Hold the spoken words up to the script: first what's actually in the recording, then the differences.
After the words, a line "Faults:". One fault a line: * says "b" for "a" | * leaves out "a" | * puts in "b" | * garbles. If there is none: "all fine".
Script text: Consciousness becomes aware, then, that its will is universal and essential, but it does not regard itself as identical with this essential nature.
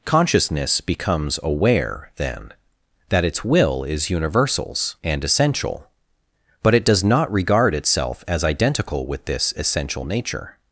Consciousness becomes aware, then, that its will is universals and essential, but it does not regard itself as identical with this essential nature.
Faults:
* says "universals" for "universal"